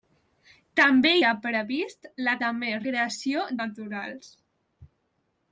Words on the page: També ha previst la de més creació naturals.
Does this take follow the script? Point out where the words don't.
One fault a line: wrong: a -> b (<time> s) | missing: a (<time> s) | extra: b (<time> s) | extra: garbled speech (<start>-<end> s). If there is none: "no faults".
no faults